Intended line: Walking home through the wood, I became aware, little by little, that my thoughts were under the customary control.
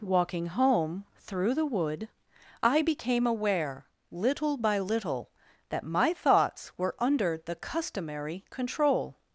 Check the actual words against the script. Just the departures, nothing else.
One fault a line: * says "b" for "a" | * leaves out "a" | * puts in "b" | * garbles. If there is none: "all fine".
all fine